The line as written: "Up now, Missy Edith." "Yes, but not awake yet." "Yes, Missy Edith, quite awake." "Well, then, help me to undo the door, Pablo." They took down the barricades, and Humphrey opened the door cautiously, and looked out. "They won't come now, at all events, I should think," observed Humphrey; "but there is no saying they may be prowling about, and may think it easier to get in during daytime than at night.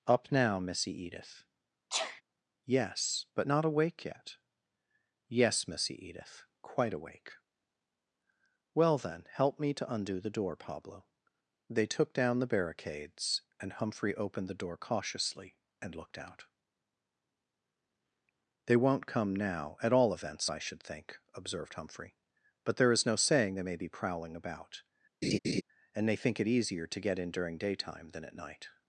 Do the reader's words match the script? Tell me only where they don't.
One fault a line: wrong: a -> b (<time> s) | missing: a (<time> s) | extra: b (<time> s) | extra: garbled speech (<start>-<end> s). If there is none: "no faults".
wrong: may -> they (26.1 s)